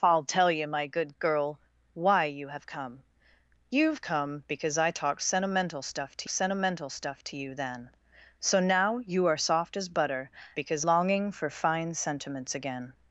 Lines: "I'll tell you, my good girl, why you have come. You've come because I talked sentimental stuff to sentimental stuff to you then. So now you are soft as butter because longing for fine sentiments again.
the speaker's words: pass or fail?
pass